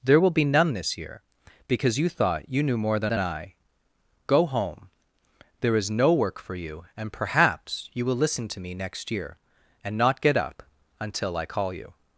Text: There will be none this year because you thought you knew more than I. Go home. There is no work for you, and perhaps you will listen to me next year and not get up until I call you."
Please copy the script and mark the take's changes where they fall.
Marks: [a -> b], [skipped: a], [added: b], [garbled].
There will be none this year because you thought you knew more than [added: than] I. Go home. There is no work for you, and perhaps you will listen to me next year and not get up until I call you."